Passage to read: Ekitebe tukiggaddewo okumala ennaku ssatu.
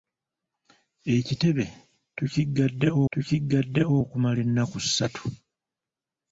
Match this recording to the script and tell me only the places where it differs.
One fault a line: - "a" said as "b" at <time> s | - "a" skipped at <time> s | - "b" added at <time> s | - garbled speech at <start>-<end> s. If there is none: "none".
- "tukiggaddewo" added at 3.1 s